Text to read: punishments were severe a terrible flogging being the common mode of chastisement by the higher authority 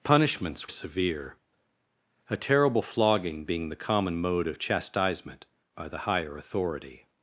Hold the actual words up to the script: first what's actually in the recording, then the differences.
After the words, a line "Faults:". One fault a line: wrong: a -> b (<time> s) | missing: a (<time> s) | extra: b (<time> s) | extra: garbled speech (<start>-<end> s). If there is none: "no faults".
punishments severe a terrible flogging being the common mode of chastisement by the higher authority
Faults:
missing: were (0.7 s)